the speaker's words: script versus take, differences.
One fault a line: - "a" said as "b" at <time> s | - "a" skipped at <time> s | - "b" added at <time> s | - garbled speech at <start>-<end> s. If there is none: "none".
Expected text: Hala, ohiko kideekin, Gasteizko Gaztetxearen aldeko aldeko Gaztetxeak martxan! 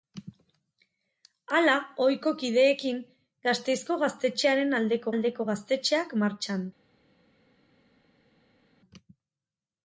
none